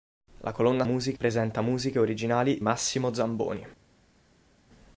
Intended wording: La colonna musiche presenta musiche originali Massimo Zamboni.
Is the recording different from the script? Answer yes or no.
no